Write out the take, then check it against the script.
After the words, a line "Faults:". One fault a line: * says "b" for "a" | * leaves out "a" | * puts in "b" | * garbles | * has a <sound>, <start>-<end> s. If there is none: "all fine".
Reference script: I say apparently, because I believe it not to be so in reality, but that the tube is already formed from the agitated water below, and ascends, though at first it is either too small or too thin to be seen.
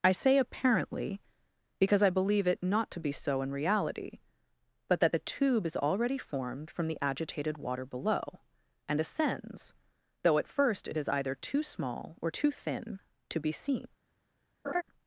I say apparently, because I believe it not to be so in reality, but that the tube is already formed from the agitated water below, and ascends, though at first it is either too small or too thin to be seen.
Faults:
* has a laugh, 14.6-14.8 s